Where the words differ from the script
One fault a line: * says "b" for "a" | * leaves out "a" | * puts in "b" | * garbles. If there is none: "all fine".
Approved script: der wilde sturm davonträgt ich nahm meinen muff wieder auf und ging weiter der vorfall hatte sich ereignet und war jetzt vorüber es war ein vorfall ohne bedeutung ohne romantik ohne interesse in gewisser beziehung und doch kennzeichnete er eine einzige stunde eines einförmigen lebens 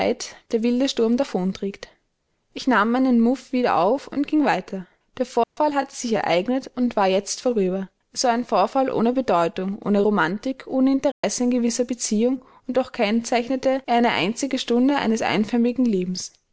all fine